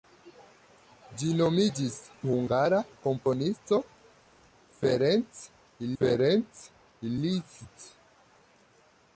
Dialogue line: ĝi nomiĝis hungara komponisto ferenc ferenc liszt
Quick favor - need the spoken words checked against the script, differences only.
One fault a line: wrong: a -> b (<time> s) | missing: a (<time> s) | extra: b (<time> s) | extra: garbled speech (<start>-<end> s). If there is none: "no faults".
no faults